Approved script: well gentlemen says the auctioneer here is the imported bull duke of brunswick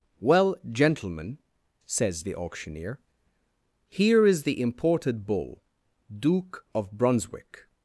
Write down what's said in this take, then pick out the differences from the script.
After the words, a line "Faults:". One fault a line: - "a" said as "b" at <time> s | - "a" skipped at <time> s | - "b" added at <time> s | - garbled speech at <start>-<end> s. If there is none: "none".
well gentlemen says the auctioneer here is the imported bull duke of brunswick
Faults:
none